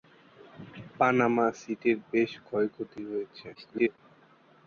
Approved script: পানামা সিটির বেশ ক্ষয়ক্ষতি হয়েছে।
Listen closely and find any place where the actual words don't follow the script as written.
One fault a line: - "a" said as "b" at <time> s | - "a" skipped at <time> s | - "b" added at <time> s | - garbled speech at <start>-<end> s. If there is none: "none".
- garbled speech at 3.5-4.0 s